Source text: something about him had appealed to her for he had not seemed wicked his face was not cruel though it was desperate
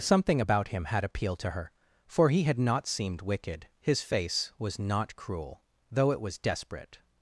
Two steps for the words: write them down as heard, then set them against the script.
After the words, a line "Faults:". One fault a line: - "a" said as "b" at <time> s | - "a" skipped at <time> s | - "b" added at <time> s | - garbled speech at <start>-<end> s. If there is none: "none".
something about him had appealed to her for he had not seemed wicked his face was not cruel though it was desperate
Faults:
none